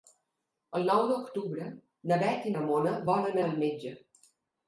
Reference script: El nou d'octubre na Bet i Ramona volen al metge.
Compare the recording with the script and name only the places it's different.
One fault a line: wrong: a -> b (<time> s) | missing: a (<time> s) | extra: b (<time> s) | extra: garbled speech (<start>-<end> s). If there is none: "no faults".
no faults